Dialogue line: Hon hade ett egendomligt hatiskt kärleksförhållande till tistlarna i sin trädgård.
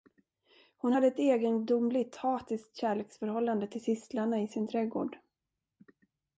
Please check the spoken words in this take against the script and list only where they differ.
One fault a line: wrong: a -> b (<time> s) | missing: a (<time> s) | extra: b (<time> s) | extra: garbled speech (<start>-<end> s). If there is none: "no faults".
no faults